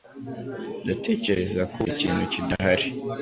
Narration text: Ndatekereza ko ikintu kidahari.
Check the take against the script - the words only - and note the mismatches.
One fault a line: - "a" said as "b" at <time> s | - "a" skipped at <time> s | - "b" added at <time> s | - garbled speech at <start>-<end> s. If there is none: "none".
none